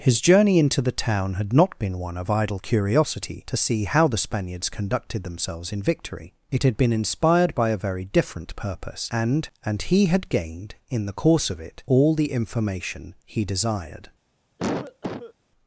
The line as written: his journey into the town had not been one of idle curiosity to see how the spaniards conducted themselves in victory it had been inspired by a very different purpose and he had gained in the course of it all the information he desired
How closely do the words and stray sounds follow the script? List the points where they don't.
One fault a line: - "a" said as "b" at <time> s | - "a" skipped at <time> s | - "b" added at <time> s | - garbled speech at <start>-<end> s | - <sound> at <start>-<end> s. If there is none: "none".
- "and" added at 9.6 s
- cough at 14.6-15.3 s